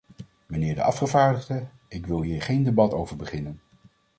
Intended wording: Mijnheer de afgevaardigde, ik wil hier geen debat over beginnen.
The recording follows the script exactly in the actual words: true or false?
true